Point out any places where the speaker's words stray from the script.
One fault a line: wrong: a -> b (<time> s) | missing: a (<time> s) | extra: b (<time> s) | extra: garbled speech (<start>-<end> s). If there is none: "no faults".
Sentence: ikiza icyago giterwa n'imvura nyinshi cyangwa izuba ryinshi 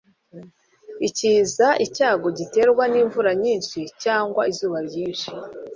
no faults